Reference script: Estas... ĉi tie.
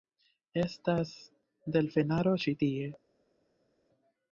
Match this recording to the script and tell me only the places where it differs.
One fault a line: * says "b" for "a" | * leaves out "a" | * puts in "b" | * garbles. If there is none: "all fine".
* puts in "delfenaro"